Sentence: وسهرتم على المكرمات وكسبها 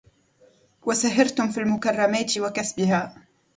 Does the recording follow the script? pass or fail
fail